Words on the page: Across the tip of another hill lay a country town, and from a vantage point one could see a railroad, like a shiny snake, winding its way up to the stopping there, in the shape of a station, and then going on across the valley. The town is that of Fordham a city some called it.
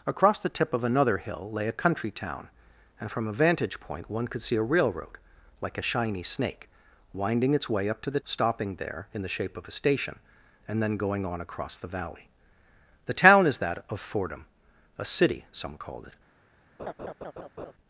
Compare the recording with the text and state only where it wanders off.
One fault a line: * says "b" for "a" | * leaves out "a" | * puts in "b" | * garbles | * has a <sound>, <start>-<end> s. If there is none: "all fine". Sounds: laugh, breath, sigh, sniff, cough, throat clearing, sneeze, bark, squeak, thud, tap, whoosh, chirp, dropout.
* has a laugh, 16.8-17.7 s